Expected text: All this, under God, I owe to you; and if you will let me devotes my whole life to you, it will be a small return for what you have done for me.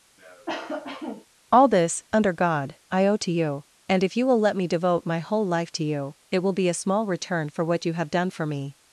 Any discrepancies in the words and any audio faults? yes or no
yes